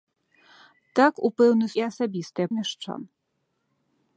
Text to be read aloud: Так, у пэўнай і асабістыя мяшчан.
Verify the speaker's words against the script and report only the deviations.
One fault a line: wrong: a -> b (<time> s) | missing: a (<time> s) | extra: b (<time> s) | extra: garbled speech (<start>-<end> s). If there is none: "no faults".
no faults